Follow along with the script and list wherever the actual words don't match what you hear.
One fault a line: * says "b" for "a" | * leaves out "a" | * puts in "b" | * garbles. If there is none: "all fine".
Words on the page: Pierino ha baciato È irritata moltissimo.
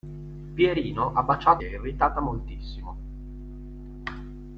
all fine